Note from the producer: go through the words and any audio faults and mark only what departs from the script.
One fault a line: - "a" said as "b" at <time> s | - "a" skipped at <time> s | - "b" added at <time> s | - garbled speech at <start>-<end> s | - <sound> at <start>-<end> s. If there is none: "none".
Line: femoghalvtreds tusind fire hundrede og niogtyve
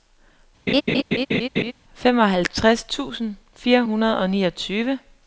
- laugh at 0.7-1.7 s